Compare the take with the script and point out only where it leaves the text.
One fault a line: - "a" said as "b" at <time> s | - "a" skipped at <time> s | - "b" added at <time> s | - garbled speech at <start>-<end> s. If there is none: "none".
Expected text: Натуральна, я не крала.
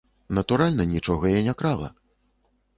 - "нічога" added at 0.9 s